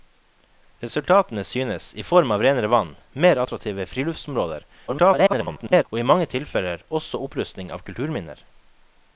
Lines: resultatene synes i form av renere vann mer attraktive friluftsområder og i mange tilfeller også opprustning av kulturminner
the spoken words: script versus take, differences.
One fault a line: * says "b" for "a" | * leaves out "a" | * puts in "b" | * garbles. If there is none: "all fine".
* garbles